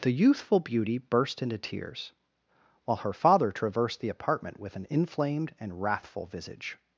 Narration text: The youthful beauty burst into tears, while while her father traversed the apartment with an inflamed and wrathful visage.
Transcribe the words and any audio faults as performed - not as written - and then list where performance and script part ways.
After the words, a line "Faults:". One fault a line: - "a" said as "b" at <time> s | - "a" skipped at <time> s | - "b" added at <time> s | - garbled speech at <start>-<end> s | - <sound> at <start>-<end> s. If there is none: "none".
The youthful beauty burst into tears, while her father traversed the apartment with an inflamed and wrathful visage.
Faults:
- "while" skipped at 3.0 s